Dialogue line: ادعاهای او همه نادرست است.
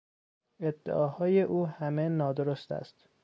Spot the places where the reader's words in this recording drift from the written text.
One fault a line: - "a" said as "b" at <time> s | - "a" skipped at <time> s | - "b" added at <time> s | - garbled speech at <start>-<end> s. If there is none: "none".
none